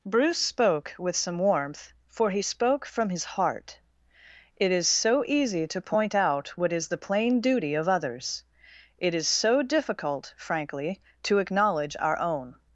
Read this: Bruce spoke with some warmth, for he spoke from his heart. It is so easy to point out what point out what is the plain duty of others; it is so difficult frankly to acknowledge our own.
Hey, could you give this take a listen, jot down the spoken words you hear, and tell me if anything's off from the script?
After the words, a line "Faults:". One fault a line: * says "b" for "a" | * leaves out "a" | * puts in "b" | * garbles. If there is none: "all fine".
Bruce spoke with some warmth, for he spoke from his heart. It is so easy to point out what is the plain duty of others; it is so difficult frankly to acknowledge our own.
Faults:
* leaves out "point out what"